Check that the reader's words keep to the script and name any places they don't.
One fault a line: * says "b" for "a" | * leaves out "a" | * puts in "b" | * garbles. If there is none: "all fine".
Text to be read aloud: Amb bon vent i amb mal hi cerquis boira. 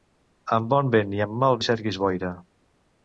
all fine